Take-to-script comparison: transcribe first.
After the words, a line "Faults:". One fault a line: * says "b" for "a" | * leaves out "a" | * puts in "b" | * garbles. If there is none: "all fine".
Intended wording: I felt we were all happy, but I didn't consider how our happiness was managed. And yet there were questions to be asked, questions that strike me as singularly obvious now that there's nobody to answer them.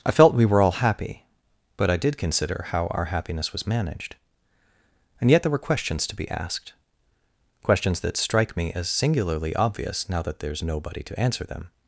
I felt we were all happy, but I did consider how our happiness was managed. And yet there were questions to be asked, questions that strike me as singularly obvious now that there's nobody to answer them.
Faults:
* says "did" for "didn't"